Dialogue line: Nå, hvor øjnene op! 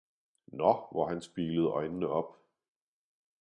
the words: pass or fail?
fail